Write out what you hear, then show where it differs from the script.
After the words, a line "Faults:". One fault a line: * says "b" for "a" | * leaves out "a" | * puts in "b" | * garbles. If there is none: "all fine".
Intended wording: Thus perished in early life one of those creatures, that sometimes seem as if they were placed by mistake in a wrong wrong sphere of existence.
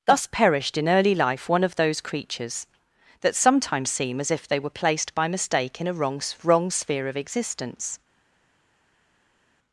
Thus perished in early life one of those creatures, that sometimes seem as if they were placed by mistake in a wrong wrong sphere of existence.
Faults:
all fine